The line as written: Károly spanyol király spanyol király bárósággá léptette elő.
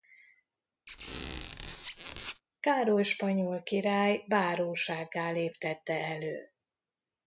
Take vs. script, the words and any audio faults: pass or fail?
fail